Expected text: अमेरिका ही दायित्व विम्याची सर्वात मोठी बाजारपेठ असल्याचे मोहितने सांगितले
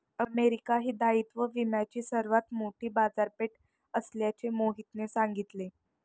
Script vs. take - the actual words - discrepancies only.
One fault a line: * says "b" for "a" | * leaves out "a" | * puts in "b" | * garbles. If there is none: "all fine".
all fine